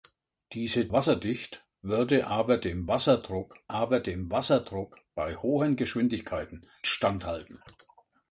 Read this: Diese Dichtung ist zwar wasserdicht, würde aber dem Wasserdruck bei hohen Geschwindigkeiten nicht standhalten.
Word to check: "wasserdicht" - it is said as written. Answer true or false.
false